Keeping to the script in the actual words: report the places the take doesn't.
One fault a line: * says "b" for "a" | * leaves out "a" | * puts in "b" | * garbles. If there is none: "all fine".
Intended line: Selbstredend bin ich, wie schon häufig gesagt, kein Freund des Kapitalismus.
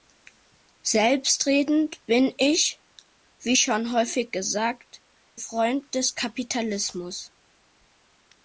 * leaves out "kein"